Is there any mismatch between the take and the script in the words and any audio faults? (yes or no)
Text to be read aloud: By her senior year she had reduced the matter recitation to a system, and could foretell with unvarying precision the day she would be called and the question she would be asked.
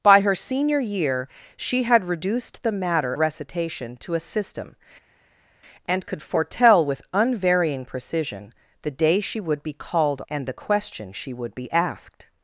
no